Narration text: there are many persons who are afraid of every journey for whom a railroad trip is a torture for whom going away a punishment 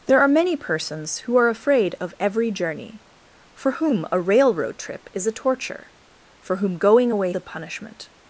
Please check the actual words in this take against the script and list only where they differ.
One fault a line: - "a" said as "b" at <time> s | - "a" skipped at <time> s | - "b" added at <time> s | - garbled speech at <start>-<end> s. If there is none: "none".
none